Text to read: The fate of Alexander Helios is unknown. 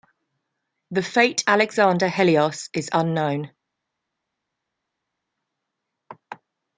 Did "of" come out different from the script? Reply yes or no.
yes